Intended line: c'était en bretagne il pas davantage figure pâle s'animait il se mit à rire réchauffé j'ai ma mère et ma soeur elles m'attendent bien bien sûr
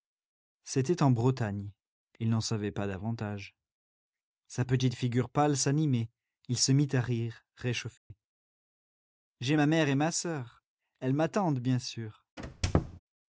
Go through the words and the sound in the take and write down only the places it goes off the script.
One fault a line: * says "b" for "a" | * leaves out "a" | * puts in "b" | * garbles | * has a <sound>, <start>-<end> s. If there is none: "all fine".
* puts in "n'en savait"
* puts in "sa petite"
* has a dropout, 8.0-8.1 s
* leaves out "bien"
* has a squeak, 12.4-13.0 s